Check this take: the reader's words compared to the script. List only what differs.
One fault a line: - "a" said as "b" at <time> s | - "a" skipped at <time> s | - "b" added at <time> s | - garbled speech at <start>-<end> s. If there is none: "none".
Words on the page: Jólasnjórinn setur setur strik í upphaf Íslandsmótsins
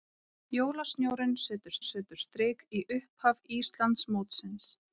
none